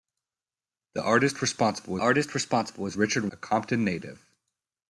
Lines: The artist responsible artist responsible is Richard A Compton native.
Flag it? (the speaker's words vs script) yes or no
no